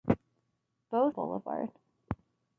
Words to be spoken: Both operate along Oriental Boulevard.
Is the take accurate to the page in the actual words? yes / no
no